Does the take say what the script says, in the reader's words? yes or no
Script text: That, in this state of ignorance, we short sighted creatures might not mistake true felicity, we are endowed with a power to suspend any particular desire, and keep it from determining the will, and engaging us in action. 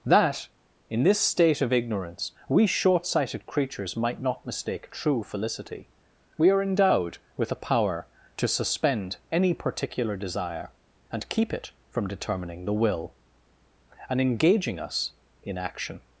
yes